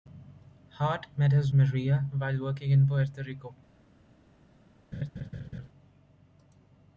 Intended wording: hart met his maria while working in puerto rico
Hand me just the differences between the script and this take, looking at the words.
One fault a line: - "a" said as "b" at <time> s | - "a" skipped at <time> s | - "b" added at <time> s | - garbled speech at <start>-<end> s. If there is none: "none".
none